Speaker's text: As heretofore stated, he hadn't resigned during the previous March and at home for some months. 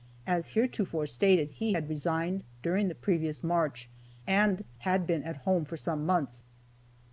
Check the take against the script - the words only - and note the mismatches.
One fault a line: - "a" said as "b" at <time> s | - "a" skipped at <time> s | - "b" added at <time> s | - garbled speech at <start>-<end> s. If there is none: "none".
- "hadn't" said as "had" at 1.7 s
- "had been" added at 4.8 s